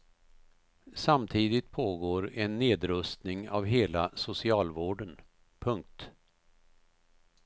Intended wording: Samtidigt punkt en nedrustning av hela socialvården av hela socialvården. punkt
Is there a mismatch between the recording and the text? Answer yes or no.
yes